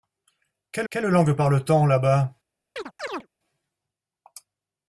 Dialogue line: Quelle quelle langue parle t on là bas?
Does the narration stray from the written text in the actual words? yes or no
no